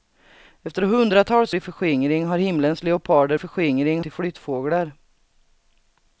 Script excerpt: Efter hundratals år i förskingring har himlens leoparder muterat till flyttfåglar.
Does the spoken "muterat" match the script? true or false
false